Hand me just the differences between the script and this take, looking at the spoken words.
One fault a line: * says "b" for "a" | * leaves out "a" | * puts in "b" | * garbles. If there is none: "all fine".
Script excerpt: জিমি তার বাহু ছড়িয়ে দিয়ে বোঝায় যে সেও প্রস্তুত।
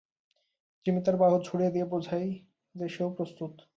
all fine